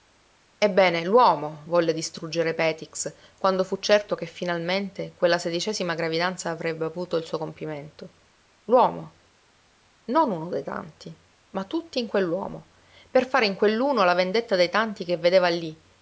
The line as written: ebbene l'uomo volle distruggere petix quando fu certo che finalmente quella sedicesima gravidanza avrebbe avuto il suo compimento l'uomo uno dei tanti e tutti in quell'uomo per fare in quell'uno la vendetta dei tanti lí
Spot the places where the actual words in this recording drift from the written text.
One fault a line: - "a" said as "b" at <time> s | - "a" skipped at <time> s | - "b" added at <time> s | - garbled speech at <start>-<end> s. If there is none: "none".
- "non" added at 10.0 s
- "e" said as "ma" at 11.5 s
- "che vedeva" added at 15.0 s